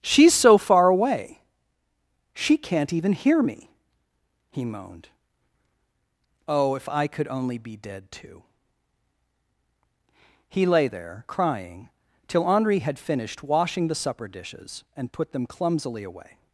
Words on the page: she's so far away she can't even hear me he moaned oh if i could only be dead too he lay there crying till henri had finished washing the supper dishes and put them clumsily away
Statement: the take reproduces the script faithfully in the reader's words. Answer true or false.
true